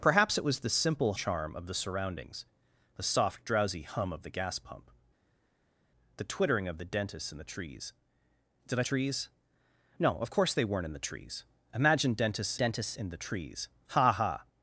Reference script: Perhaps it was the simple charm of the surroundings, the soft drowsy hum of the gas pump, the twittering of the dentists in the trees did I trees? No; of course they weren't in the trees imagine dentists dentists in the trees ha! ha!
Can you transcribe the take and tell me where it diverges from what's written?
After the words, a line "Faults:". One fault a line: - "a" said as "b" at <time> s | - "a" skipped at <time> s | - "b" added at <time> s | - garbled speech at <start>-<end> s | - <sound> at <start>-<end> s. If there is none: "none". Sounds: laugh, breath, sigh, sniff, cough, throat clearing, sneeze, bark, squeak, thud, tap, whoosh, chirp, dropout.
Perhaps it was the simple charm of the surroundings, the soft drowsy hum of the gas pump, the twittering of the dentists in the trees did I trees? No; of course they weren't in the trees imagine dentists dentists in the trees ha! ha!
Faults:
none